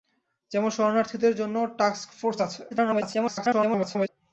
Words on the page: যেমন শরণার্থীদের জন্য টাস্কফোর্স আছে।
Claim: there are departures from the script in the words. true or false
true